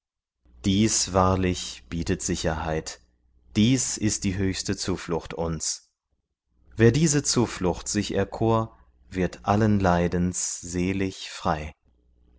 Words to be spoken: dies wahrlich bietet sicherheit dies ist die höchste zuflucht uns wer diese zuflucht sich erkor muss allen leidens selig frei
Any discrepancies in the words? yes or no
yes